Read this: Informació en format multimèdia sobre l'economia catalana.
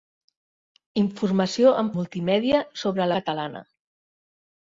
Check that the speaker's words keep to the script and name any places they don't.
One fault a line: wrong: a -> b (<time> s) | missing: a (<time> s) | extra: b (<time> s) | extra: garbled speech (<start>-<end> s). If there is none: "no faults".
missing: format (1.9 s)
missing: l'economia (3.1 s)